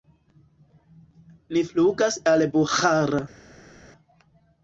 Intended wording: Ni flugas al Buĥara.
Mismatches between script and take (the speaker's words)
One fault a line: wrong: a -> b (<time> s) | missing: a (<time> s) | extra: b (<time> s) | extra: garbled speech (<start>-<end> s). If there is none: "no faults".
no faults